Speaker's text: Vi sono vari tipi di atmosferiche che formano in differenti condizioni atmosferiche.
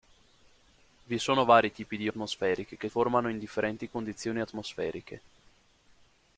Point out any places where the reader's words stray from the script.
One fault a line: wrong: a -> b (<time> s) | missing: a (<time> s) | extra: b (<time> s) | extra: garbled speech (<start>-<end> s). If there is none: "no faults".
no faults